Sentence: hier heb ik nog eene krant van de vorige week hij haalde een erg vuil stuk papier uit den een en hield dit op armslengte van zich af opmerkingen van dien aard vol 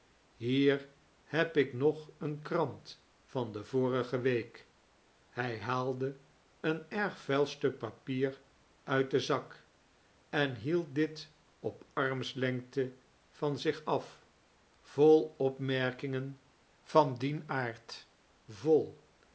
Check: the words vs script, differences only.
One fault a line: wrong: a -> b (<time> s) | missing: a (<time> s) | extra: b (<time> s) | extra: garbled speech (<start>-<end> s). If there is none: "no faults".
wrong: een -> zak (9.2 s)
extra: vol (14.8 s)